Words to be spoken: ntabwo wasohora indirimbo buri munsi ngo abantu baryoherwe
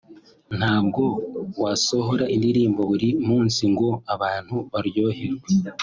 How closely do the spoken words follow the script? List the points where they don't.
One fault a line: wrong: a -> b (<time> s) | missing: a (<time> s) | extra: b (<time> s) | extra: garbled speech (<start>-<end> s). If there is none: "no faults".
no faults